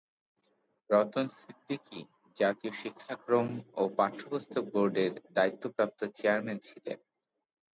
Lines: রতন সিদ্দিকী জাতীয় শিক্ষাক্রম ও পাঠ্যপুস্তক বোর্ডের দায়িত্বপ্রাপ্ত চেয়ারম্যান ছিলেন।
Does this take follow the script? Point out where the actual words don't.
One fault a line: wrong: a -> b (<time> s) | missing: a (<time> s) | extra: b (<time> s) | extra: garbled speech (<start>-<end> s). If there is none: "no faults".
no faults